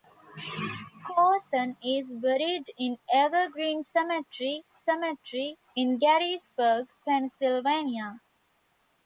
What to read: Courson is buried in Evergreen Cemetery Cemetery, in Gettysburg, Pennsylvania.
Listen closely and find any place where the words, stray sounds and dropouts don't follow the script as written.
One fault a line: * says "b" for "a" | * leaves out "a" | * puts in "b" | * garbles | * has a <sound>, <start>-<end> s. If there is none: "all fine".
all fine